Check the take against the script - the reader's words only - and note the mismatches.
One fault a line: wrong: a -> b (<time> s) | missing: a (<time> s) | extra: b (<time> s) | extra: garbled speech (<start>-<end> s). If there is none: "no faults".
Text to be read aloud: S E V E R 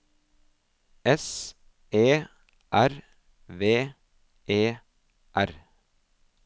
extra: R (2.7 s)